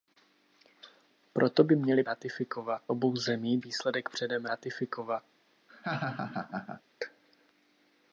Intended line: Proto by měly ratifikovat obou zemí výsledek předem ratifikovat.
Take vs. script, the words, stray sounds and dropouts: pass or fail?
fail